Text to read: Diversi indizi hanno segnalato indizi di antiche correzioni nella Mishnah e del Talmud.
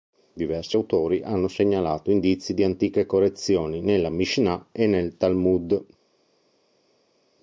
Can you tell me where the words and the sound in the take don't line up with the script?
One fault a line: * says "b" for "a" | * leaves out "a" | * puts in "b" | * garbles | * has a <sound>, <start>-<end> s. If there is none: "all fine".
* says "autori" for "indizi"
* says "nel" for "del"